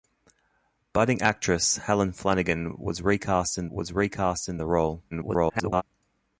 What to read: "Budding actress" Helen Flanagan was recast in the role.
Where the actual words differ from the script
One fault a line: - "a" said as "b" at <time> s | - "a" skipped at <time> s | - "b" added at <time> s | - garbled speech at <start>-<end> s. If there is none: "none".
- "was recast in" added at 3.7 s
- garbled speech at 5.1-5.8 s